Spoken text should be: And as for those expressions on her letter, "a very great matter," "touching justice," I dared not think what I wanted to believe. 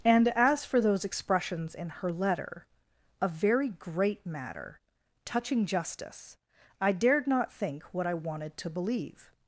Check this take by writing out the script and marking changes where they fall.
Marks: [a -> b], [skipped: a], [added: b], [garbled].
And as for those expressions [on -> in] her letter, "a very great matter," "touching justice," I dared not think what I wanted to believe.